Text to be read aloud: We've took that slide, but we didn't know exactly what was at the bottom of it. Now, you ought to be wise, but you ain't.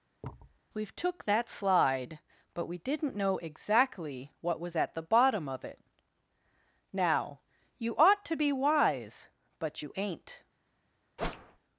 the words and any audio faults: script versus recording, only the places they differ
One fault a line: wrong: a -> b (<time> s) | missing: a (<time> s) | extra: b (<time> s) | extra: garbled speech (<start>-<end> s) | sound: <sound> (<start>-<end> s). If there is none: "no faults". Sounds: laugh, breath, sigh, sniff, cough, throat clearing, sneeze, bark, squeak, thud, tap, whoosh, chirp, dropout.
sound: thud (0.2-0.6 s)
sound: whoosh (11.2-11.6 s)